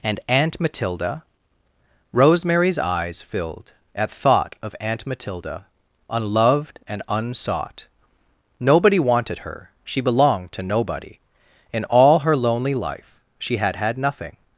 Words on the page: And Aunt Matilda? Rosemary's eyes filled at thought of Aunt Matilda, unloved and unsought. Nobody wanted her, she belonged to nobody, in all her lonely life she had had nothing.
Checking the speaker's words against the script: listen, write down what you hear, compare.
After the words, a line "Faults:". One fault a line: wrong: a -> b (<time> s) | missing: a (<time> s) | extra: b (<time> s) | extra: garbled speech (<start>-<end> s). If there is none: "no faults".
And Aunt Matilda? Rosemary's eyes filled at thought of Aunt Matilda, unloved and unsought. Nobody wanted her, she belonged to nobody, in all her lonely life she had had nothing.
Faults:
no faults